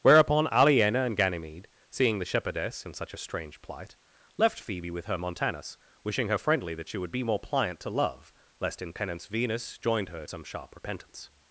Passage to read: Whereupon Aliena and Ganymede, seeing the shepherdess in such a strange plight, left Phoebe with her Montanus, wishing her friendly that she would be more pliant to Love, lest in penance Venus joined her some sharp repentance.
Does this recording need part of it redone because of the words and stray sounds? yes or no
no